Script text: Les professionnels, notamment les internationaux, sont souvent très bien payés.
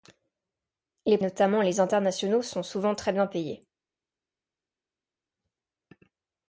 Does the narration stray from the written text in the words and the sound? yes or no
yes